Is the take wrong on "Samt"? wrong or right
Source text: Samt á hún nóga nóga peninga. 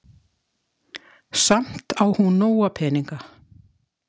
right